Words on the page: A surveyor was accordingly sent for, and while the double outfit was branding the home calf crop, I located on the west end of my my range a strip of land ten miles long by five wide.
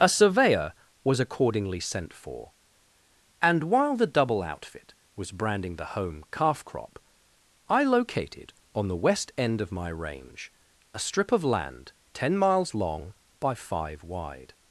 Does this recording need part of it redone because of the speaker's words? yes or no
yes